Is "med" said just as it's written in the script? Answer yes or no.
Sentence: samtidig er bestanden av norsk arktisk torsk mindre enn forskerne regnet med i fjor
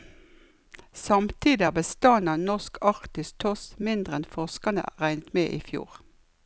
yes